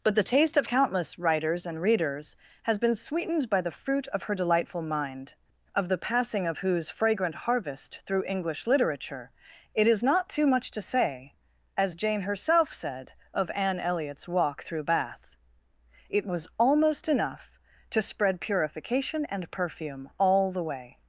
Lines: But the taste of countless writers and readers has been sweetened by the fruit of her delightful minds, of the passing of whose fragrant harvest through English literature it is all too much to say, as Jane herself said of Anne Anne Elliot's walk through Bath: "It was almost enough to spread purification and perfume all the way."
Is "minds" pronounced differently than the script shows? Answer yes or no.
yes